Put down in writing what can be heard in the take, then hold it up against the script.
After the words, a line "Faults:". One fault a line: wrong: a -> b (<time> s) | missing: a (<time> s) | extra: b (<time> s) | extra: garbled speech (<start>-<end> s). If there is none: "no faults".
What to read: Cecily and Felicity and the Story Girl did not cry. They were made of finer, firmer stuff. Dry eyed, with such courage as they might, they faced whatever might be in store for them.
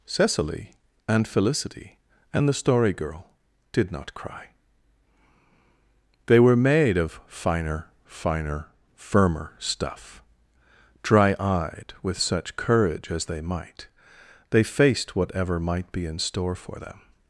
Cecily and Felicity and the Story Girl did not cry. They were made of finer finer, firmer stuff. Dry eyed, with such courage as they might, they faced whatever might be in store for them.
Faults:
extra: finer (8.1 s)